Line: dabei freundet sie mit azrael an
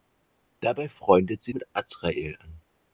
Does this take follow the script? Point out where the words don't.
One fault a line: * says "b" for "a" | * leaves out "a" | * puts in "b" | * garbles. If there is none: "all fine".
all fine